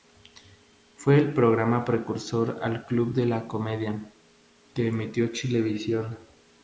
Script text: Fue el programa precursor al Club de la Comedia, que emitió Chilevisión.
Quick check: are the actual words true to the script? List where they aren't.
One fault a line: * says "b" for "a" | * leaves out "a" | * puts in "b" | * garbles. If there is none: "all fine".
all fine